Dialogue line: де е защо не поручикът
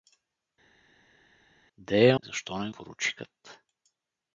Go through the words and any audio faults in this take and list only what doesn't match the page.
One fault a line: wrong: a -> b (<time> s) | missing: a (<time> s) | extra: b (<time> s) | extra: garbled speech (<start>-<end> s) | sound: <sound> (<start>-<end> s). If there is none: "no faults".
no faults